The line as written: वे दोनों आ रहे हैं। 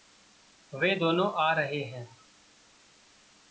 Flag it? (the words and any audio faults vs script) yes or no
no